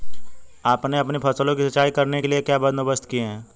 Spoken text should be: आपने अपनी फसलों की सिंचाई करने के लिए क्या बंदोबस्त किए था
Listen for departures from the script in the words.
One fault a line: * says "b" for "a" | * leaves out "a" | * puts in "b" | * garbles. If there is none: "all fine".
* says "है" for "था"